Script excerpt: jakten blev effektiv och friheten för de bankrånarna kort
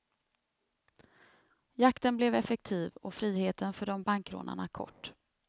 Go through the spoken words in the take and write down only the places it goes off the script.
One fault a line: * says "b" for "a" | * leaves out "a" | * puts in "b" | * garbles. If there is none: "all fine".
all fine